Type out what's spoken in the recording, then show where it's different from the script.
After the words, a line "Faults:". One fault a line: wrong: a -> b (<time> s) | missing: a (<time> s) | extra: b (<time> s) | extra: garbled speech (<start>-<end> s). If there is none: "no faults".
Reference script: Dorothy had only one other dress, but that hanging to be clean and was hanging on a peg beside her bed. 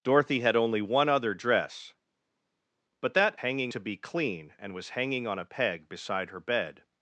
Dorothy had only one other dress, but that hanging to be clean and was hanging on a peg beside her bed.
Faults:
no faults